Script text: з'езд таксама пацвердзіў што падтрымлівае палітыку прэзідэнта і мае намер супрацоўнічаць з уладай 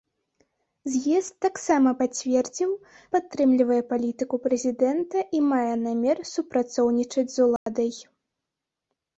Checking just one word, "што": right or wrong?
wrong